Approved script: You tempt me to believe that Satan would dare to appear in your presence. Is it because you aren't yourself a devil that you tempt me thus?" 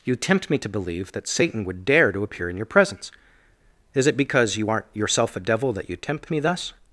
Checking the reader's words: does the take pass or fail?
pass